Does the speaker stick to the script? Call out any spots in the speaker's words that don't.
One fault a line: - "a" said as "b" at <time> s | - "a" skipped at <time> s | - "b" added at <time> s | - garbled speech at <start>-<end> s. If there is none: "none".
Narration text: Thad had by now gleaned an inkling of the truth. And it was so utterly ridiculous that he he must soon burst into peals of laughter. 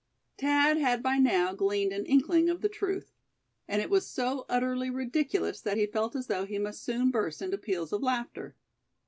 - "felt as though" added at 5.9 s